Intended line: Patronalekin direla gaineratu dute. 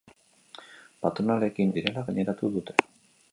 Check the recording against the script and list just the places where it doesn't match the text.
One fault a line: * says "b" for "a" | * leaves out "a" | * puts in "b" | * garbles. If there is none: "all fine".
all fine